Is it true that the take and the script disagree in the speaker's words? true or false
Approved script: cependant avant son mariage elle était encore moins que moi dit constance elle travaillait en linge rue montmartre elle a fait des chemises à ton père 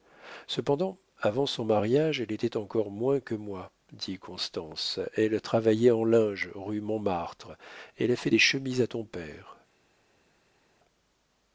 false